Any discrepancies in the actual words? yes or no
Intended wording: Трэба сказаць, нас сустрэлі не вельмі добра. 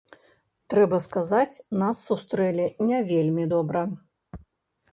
no